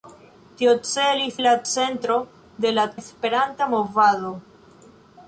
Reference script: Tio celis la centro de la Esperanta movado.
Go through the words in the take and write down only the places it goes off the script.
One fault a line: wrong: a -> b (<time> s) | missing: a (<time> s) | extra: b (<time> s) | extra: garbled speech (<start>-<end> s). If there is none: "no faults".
no faults